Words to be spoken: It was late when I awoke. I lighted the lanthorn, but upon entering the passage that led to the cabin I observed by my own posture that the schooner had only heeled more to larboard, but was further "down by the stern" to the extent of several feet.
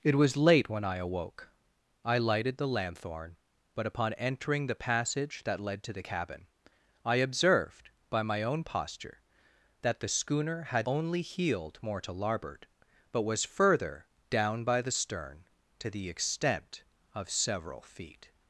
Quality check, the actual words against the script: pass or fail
pass